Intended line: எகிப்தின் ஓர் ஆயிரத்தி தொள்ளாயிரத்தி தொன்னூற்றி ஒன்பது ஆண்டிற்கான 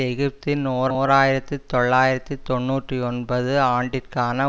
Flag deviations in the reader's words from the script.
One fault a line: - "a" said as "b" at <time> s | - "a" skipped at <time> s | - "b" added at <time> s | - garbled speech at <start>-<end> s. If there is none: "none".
- "ஓர்" added at 0.9 s